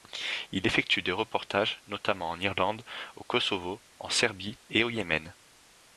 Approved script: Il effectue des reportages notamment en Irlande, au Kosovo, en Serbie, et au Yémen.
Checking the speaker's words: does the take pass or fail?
pass